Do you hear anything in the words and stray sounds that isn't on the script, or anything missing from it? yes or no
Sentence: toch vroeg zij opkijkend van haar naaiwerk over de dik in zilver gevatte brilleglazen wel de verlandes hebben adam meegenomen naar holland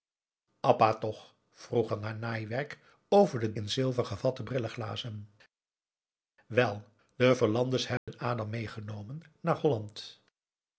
yes